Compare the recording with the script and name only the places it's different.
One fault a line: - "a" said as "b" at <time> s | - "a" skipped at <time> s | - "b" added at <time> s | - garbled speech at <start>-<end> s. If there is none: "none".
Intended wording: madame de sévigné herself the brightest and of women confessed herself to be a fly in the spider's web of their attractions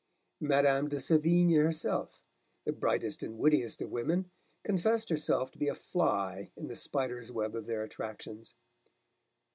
- "wittiest" added at 3.4 s